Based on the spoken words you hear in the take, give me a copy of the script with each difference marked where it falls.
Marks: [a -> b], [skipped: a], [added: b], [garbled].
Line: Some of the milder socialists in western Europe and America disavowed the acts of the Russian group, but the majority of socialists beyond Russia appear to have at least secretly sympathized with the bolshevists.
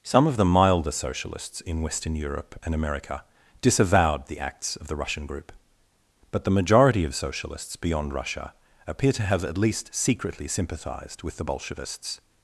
Some of the milder socialists in western Europe and America disavowed the acts of the Russian group, but the majority of socialists beyond Russia appear to have at least secretly sympathized with the bolshevists.